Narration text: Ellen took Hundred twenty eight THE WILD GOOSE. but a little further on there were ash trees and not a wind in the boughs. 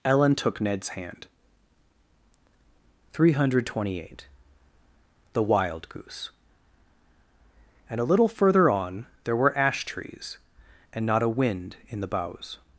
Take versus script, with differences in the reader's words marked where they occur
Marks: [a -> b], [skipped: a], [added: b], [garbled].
Ellen took [added: Ned's hand three] Hundred twenty eight THE WILD GOOSE. [but -> and] a little further on there were ash trees and not a wind in the boughs.